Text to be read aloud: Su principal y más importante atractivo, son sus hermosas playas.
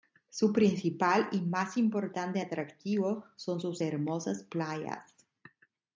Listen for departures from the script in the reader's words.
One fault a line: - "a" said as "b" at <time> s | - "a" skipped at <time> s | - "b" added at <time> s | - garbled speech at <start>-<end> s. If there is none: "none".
none